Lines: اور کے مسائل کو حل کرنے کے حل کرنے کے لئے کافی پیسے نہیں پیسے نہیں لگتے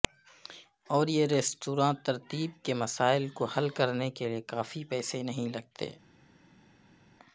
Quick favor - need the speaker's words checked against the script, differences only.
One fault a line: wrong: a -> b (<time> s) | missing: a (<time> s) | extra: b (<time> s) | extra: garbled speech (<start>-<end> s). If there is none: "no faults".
extra: یہ ریستوراں ترتیب (1.1 s)
missing: حل کرنے کے (4.3 s)
missing: پیسے نہیں (5.5 s)